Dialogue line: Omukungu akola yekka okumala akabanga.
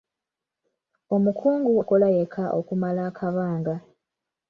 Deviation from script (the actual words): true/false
false